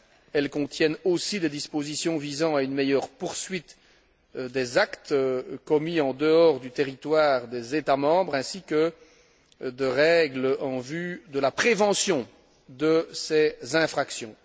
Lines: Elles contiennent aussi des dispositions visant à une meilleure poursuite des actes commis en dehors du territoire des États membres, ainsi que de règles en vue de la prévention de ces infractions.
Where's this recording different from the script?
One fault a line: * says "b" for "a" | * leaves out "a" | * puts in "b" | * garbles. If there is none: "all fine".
all fine